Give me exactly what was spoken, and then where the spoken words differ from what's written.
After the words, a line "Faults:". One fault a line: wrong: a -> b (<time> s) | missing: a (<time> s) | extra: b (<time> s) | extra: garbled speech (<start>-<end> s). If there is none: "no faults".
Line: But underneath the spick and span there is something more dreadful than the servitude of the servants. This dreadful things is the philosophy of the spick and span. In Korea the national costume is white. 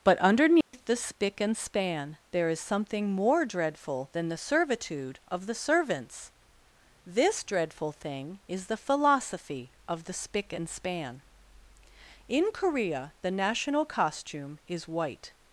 But underneath the spick and span there is something more dreadful than the servitude of the servants. This dreadful thing is the philosophy of the spick and span. In Korea the national costume is white.
Faults:
wrong: things -> thing (7.9 s)